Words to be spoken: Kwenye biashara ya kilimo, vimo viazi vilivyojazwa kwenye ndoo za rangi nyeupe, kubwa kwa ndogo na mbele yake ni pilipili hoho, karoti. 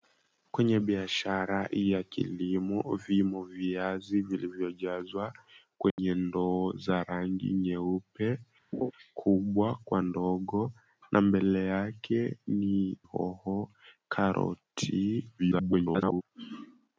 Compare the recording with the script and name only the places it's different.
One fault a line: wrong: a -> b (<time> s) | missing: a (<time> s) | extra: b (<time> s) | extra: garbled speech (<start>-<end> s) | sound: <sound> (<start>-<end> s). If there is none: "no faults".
sound: dropout (5.9-6.0 s)
sound: laugh (8.7-8.9 s)
missing: pilipili (13.0 s)
extra: garbled speech (15.4-16.2 s)